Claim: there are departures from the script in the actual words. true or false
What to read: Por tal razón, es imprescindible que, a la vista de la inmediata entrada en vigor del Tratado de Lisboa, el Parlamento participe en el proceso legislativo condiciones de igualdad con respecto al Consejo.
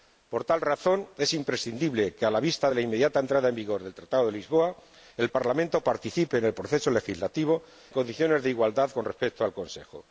false